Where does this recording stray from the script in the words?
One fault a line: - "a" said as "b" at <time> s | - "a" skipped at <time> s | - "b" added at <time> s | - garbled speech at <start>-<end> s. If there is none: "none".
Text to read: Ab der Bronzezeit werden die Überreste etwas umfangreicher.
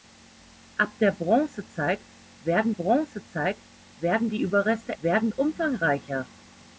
- "Bronzezeit werden" added at 2.7 s
- "etwas" said as "werden" at 5.0 s